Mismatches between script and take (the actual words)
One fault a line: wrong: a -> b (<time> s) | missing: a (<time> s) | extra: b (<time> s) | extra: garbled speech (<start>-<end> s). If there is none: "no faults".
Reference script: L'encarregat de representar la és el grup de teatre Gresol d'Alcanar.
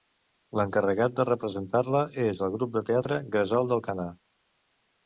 no faults